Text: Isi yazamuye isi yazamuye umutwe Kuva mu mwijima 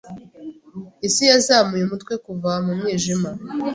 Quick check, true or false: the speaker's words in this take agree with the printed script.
false